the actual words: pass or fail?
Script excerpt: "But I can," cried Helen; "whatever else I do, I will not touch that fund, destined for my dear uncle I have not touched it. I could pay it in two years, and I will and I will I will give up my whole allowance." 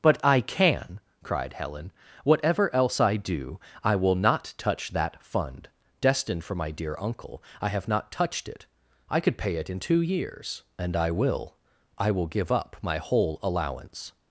fail